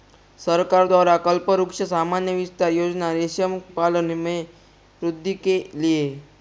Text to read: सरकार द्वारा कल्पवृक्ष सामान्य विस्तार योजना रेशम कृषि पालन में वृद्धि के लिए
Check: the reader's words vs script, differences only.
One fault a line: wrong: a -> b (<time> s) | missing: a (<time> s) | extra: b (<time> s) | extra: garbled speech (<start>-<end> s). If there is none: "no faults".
missing: कृषि (3.6 s)